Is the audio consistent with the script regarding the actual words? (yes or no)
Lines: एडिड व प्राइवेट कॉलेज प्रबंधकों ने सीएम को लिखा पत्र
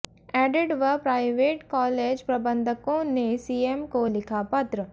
yes